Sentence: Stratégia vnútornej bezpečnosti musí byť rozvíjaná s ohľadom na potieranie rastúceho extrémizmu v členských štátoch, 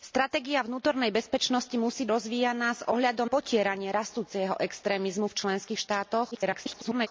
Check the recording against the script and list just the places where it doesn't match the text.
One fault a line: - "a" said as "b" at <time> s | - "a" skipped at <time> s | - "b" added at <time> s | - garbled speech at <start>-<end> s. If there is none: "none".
- "byť" skipped at 2.1 s
- "na" skipped at 3.3 s
- garbled speech at 6.3-7.1 s